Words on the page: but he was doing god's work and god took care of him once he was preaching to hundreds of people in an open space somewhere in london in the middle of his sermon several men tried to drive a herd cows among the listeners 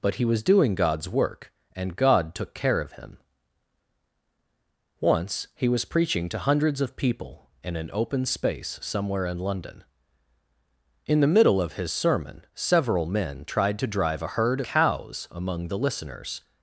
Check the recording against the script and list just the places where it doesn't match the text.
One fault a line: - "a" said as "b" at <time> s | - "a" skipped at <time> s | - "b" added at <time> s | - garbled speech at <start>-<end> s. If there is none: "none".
none